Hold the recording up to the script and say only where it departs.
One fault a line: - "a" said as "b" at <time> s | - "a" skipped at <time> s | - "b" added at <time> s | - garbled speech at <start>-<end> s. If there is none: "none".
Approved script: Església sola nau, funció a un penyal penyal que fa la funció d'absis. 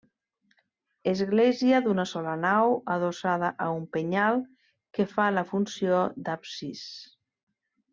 - "d'una" added at 1.9 s
- "funció" said as "adossada" at 3.0 s
- "penyal" skipped at 4.4 s